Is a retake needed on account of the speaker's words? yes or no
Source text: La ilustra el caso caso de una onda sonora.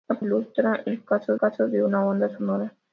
no